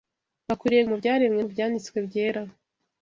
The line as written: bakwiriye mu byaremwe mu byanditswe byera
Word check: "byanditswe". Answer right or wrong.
right